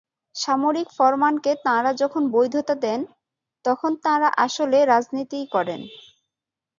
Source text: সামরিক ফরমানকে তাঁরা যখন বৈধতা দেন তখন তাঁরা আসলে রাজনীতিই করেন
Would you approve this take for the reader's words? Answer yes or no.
yes